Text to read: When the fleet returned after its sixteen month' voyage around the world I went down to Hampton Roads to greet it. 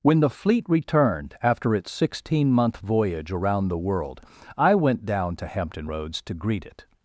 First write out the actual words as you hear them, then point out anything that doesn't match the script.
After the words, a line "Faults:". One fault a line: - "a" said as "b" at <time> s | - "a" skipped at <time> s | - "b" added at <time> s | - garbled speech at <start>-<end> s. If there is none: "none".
When the fleet returned after its sixteen month' voyage around the world I went down to Hampton Roads to greet it.
Faults:
none